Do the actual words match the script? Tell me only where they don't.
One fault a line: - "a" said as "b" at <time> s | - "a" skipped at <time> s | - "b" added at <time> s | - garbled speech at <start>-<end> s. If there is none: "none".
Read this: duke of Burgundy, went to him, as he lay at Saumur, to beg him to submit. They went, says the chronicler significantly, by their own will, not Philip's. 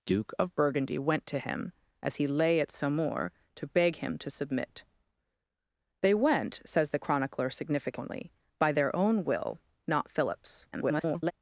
- garbled speech at 10.7-11.3 s